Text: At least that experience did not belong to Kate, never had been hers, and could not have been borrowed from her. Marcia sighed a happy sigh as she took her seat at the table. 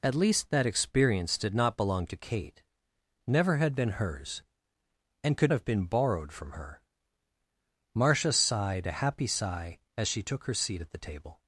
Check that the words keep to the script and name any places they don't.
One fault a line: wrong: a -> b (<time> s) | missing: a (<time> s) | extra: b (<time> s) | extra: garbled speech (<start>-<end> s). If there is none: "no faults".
missing: not (5.5 s)